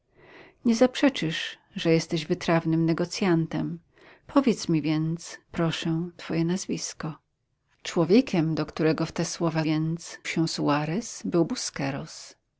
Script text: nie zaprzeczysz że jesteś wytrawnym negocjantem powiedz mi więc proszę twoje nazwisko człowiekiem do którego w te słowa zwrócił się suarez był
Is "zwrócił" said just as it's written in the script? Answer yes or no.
no